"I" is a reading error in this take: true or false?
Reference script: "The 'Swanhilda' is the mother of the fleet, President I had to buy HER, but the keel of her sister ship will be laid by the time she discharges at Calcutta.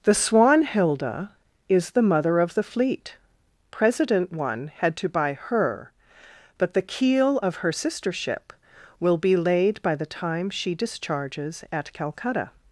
true